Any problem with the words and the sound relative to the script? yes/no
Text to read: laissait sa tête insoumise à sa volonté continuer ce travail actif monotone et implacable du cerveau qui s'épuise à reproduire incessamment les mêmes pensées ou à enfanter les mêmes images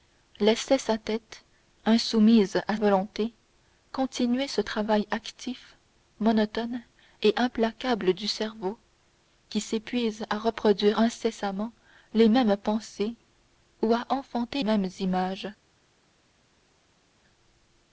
yes